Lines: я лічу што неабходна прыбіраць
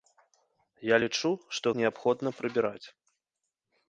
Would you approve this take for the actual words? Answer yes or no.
yes